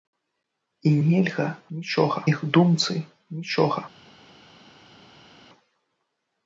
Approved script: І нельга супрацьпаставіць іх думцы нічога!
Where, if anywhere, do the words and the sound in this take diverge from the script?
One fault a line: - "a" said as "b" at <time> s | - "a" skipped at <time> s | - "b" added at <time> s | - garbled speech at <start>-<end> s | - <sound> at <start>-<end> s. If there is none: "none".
- "супрацьпаставіць" said as "нічога" at 1.8 s